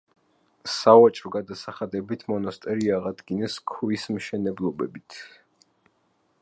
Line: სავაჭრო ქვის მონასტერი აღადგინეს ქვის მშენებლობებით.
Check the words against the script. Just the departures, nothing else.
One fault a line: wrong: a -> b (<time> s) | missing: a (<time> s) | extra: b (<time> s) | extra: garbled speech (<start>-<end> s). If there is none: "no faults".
wrong: ქვის -> გადასახადებით (1.3 s)